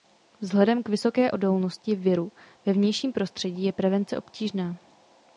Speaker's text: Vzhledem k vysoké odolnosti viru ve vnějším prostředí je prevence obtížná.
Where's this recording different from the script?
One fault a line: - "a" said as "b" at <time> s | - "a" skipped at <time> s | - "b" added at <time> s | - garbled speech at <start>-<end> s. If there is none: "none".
none